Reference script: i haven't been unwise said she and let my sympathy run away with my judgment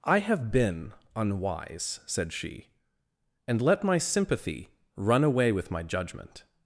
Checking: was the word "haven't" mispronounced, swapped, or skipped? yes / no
yes